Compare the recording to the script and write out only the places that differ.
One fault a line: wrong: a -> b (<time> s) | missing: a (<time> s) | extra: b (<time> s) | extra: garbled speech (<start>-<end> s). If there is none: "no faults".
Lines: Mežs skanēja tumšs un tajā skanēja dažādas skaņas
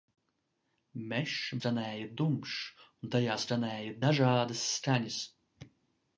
no faults